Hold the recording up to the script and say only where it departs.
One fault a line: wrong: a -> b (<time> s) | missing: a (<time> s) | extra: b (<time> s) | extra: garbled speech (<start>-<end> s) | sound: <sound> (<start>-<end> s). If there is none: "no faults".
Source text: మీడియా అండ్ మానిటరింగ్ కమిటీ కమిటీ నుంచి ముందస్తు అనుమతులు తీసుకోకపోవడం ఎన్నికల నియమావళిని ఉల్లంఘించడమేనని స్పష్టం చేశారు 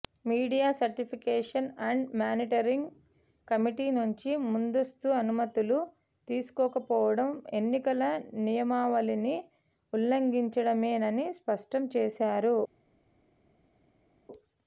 extra: సర్టిఫికేషన్ (0.8 s)
missing: కమిటీ (3.9 s)